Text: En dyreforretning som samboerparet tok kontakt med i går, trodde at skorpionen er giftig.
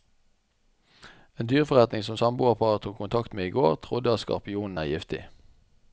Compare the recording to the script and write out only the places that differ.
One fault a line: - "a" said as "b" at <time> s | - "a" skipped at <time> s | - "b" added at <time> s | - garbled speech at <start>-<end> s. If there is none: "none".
none